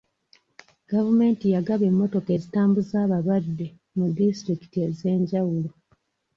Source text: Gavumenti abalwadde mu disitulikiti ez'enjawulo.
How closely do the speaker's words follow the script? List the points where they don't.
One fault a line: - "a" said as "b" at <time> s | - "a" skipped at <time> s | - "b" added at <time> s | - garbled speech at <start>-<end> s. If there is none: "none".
- "yagaba emmotoka ezitambuza" added at 1.6 s